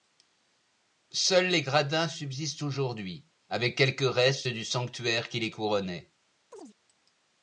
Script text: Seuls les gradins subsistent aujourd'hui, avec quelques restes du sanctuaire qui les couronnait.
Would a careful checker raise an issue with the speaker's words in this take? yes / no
no